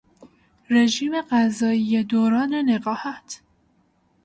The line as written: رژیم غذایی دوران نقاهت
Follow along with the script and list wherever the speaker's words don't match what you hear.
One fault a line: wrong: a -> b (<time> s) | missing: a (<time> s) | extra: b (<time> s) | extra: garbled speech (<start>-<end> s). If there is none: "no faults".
no faults